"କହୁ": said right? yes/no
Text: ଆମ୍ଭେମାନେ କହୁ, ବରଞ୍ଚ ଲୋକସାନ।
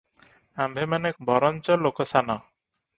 no